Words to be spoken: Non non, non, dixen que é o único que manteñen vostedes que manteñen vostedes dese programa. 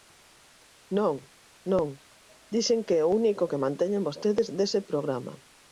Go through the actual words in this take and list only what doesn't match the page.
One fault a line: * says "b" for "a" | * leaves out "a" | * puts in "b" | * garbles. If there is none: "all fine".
* leaves out "non"
* leaves out "que manteñen vostedes"